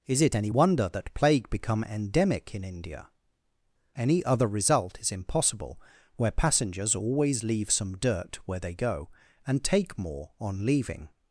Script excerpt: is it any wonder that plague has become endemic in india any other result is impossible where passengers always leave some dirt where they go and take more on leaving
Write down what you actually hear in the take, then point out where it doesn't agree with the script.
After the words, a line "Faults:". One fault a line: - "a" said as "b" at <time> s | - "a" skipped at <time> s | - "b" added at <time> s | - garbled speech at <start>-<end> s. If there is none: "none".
is it any wonder that plague become endemic in india any other result is impossible where passengers always leave some dirt where they go and take more on leaving
Faults:
- "has" skipped at 1.5 s